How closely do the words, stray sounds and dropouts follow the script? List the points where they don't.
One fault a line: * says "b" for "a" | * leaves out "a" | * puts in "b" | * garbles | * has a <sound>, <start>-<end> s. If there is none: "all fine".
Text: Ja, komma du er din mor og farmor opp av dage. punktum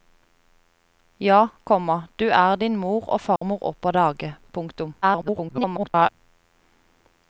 * has a dropout, 3.4-3.4 s
* garbles